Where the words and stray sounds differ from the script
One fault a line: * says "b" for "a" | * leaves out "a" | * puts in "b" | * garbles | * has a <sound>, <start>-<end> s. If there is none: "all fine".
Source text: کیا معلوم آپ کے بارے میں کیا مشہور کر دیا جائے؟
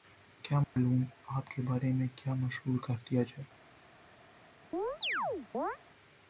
* has a dropout, 0.6-0.8 s
* has a chirp, 4.7-5.8 s